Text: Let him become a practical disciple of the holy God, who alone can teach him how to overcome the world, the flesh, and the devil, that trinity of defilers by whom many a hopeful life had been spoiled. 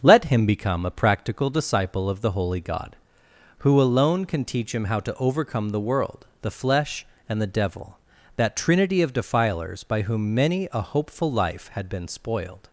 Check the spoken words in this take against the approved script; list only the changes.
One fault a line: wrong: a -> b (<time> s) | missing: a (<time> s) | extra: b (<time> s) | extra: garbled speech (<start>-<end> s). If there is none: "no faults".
no faults